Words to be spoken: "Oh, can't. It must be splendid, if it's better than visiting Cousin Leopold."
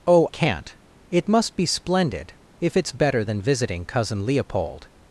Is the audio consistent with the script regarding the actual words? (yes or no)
yes